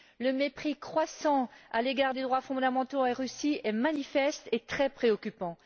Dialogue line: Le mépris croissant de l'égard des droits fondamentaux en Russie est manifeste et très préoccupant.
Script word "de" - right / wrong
wrong